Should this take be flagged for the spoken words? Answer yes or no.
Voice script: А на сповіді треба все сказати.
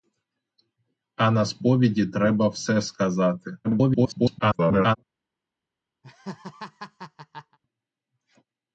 yes